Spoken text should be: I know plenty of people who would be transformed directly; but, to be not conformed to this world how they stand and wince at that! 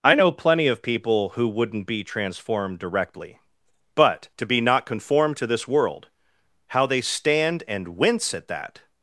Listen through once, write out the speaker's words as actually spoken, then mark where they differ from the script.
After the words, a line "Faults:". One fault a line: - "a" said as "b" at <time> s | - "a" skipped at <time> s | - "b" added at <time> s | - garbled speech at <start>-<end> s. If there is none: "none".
I know plenty of people who wouldn't be transformed directly; but, to be not conformed to this world how they stand and wince at that!
Faults:
- "would" said as "wouldn't" at 1.5 s